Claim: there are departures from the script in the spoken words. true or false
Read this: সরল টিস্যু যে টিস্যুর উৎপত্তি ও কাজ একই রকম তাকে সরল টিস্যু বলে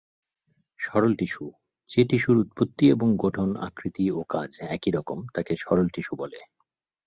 true